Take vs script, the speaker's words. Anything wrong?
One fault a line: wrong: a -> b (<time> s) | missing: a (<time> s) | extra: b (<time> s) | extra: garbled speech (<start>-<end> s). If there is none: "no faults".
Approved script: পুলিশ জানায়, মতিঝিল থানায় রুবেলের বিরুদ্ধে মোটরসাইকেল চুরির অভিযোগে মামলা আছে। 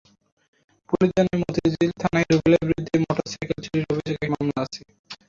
no faults